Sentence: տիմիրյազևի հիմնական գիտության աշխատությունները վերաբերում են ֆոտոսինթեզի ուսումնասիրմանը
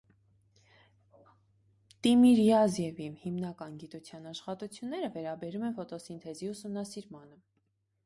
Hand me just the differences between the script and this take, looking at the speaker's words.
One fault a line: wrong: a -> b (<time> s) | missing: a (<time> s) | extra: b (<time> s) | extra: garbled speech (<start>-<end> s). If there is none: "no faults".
no faults